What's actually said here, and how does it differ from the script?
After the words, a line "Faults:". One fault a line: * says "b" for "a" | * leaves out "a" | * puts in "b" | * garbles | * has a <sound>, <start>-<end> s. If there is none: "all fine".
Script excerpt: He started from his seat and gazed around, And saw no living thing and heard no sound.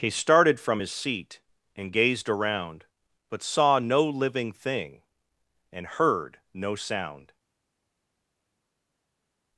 He started from his seat and gazed around, But saw no living thing and heard no sound.
Faults:
* says "But" for "And"